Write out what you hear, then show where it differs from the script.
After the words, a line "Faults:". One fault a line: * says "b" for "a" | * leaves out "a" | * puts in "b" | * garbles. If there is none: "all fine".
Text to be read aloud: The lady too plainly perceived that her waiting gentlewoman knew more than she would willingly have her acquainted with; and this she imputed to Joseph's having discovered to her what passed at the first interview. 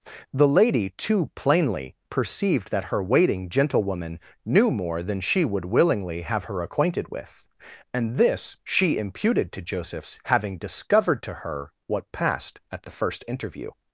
The lady too plainly perceived that her waiting gentlewoman knew more than she would willingly have her acquainted with; and this she imputed to Joseph's having discovered to her what passed at the first interview.
Faults:
all fine